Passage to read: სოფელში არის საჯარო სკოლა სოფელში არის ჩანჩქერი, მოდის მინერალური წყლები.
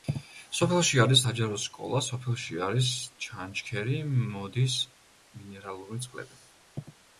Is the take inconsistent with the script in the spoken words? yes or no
no